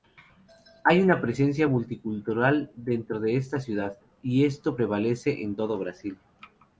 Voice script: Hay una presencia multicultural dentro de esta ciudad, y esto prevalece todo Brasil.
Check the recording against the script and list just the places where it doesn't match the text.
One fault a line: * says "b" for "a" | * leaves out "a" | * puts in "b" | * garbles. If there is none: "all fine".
* puts in "en"